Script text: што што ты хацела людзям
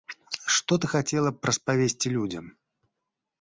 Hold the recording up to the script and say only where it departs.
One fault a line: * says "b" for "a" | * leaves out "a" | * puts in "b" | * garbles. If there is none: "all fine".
* leaves out "што"
* puts in "б распавесці"